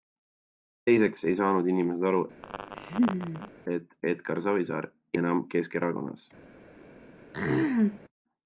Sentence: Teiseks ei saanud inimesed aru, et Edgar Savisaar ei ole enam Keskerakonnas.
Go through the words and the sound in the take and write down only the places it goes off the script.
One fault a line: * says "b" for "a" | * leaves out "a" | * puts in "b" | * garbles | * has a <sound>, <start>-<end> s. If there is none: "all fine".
* has a laugh, 2.4-3.5 s
* leaves out "ei ole"
* has a throat clearing, 7.3-8.0 s